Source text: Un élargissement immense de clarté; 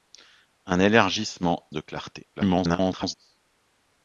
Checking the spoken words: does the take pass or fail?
fail